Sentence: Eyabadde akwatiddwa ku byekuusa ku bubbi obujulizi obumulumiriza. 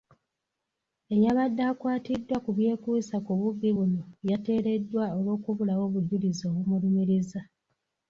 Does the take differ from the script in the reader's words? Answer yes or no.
yes